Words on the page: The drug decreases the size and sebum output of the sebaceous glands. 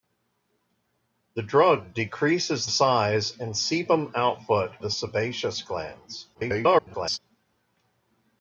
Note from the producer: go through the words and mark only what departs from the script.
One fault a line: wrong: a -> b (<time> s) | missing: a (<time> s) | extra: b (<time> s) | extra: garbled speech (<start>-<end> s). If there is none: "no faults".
missing: the (2.6 s)
missing: of (4.7 s)
extra: garbled speech (6.3-7.2 s)